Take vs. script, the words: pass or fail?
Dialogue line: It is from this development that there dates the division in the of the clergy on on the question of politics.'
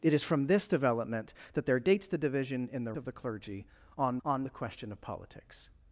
pass